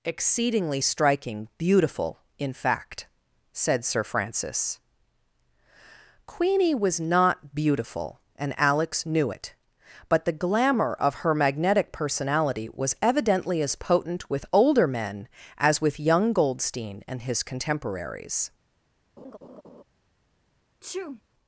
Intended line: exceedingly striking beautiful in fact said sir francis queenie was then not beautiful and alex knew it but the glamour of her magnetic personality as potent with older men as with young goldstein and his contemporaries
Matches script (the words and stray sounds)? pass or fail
fail